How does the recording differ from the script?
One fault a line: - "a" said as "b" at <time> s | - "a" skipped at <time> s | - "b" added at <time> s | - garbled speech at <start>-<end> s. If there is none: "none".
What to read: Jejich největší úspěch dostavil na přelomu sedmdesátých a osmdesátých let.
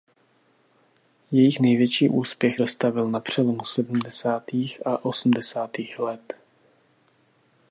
none